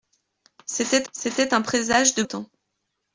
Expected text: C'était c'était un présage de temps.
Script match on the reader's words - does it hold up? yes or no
yes